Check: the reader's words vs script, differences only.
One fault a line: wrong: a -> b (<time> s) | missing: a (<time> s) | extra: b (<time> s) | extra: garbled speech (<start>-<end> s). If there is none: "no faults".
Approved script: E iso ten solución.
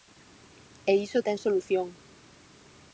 no faults